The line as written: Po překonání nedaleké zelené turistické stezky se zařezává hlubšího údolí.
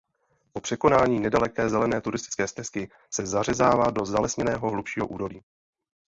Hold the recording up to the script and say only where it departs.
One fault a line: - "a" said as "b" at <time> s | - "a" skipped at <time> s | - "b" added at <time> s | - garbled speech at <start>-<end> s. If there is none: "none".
- "do zalesněného" added at 3.9 s